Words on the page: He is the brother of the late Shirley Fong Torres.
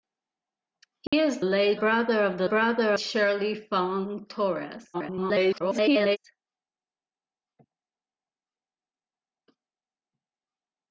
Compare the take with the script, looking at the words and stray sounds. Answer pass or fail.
fail